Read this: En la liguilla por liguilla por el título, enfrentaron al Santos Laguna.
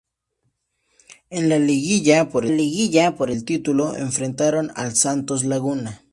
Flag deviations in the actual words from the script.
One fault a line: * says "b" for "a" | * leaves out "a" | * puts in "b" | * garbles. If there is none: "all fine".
all fine